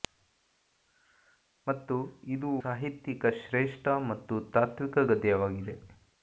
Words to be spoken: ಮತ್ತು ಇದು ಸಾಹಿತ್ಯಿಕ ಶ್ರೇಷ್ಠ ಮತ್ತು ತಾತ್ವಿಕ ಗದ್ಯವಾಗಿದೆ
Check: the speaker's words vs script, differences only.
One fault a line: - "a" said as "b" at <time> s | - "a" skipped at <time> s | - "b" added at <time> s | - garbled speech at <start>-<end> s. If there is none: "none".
none